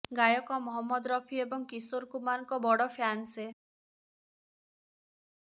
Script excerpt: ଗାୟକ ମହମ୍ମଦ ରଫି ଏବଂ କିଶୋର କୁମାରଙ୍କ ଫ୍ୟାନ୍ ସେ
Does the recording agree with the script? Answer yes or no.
no